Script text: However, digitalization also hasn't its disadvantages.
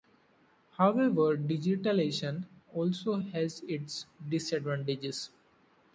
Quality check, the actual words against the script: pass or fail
fail